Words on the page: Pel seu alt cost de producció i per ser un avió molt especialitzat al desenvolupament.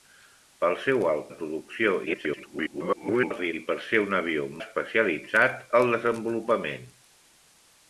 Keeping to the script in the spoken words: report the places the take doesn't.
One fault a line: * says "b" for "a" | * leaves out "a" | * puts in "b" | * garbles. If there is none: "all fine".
* leaves out "cost"
* garbles
* leaves out "molt"